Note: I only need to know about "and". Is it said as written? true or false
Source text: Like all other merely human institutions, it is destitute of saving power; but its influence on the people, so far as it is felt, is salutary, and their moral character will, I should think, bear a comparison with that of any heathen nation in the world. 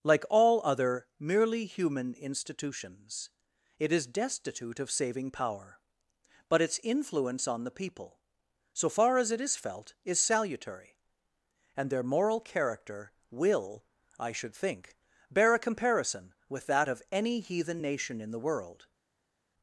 true